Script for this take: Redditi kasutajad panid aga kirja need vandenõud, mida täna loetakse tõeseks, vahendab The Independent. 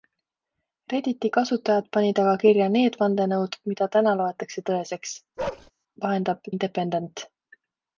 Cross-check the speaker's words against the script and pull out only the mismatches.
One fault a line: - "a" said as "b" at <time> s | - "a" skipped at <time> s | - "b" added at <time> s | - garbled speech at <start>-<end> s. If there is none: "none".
- "The" skipped at 6.5 s